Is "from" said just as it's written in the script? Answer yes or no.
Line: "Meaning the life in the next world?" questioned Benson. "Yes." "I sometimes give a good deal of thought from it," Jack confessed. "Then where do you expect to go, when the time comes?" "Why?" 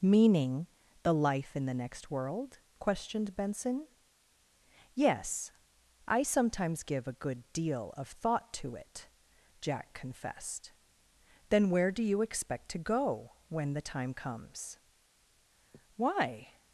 no